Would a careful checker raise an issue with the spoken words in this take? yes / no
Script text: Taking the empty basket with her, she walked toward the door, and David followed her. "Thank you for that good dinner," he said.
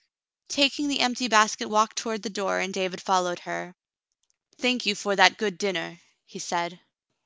yes